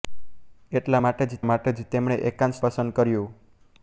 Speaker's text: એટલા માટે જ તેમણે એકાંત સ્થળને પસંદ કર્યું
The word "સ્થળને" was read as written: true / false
false